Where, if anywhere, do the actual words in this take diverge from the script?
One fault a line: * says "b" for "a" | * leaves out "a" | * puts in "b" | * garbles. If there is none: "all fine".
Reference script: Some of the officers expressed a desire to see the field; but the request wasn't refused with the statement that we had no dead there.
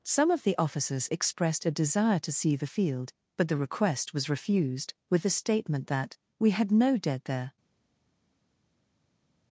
* says "was" for "wasn't"